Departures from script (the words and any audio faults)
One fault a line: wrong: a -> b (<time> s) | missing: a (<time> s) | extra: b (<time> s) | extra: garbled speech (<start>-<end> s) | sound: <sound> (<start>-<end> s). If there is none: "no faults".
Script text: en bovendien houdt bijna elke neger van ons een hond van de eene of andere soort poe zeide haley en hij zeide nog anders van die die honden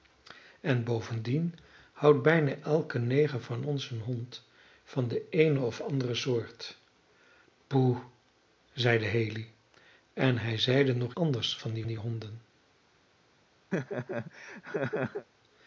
sound: laugh (13.7-15.3 s)